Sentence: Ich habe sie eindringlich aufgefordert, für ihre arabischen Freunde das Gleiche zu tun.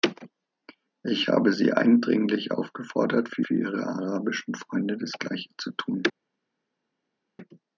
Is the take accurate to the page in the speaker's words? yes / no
no